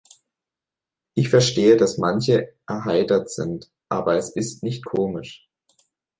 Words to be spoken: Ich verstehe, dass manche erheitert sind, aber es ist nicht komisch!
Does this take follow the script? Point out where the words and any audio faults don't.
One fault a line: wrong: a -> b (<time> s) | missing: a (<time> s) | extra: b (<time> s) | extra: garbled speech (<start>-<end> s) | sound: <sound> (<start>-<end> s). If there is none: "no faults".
no faults